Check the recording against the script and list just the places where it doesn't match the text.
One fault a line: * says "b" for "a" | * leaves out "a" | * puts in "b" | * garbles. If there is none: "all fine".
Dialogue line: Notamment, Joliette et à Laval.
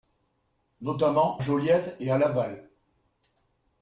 all fine